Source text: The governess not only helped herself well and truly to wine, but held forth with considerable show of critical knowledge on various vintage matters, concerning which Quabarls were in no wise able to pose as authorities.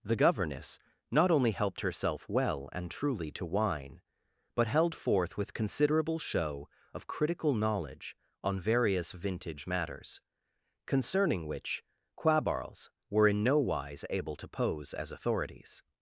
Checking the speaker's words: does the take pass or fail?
pass